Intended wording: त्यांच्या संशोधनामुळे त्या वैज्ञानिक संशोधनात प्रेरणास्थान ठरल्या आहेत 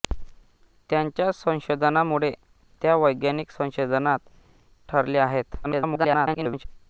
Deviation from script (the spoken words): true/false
true